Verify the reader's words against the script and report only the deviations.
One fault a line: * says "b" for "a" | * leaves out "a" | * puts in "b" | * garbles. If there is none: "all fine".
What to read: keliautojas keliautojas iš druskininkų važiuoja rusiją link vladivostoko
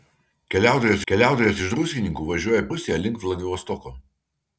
all fine